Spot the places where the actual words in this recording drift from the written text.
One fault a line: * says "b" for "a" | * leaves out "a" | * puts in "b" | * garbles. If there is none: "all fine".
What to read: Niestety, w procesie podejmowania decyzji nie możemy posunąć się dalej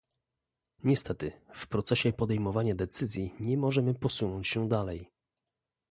all fine